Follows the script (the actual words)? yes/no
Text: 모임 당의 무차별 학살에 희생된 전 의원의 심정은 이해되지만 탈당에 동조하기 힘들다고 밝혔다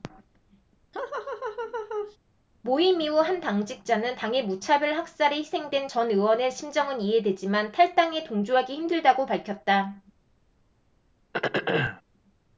no